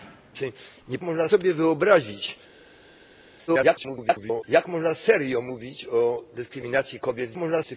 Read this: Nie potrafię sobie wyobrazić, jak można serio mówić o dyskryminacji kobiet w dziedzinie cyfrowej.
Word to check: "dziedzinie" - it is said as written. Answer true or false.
false